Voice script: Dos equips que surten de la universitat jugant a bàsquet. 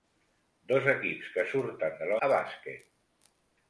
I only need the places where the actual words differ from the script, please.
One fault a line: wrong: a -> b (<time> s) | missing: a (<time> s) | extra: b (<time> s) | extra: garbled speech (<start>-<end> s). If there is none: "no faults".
missing: universitat jugant (2.2 s)